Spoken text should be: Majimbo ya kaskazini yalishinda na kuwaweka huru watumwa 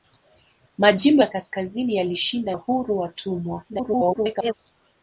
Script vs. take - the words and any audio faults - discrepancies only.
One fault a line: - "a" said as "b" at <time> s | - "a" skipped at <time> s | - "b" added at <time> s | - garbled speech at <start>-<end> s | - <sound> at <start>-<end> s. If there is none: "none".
- "na kuwaweka" skipped at 2.5 s
- garbled speech at 3.7-4.5 s